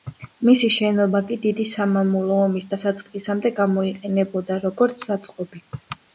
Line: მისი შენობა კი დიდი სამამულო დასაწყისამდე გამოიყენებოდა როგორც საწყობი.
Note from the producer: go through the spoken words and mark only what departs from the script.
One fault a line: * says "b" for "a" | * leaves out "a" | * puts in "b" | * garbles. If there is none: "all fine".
* puts in "ომის"